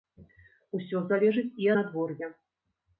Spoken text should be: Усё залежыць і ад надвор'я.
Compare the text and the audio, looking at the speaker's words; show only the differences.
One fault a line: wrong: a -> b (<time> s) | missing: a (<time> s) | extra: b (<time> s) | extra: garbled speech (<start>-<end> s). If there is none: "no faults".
missing: ад (1.7 s)